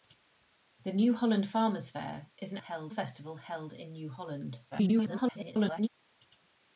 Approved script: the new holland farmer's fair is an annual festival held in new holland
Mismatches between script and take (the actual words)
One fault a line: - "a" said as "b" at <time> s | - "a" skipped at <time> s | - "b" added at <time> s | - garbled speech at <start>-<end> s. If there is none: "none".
- "annual" said as "held" at 2.6 s
- garbled speech at 4.7-5.9 s